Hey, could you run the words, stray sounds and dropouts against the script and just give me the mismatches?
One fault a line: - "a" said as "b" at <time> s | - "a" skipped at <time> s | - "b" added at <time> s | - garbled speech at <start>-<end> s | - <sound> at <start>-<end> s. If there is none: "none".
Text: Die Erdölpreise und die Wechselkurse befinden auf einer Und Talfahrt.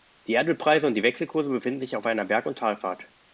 - "sich" added at 1.8 s
- "Berg" added at 2.2 s